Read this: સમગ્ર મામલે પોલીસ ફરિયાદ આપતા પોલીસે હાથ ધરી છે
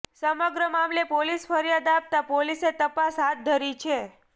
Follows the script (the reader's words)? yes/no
no